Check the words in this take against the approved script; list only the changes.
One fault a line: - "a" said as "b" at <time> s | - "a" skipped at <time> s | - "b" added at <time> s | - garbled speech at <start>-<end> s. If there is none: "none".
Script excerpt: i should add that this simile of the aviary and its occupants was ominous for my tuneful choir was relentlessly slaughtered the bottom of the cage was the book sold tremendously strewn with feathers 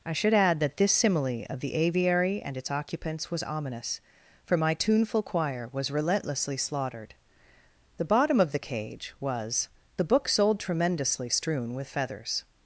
none